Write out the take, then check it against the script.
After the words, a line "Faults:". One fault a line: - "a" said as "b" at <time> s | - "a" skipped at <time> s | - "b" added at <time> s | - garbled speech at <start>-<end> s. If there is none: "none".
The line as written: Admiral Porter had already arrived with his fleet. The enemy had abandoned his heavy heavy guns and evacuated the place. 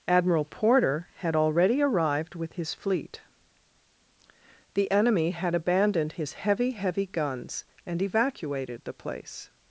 Admiral Porter had already arrived with his fleet. The enemy had abandoned his heavy heavy guns and evacuated the place.
Faults:
none